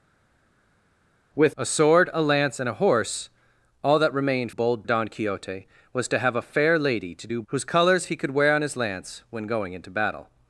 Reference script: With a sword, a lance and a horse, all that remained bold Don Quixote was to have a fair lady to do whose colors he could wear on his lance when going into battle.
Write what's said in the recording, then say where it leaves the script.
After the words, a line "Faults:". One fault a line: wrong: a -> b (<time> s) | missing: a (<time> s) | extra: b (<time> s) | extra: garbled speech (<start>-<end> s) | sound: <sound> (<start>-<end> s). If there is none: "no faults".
With a sword, a lance and a horse, all that remained bold Don Quixote was to have a fair lady to do whose colors he could wear on his lance when going into battle.
Faults:
no faults